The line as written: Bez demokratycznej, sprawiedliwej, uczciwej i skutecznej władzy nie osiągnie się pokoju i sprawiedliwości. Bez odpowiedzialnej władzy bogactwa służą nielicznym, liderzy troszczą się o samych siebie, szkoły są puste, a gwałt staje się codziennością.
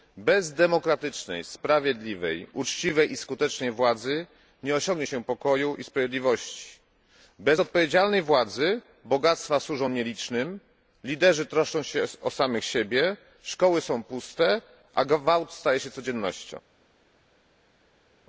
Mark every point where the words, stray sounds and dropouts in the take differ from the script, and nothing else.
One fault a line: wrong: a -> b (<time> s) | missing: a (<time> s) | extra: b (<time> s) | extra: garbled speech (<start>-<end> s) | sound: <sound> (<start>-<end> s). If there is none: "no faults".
no faults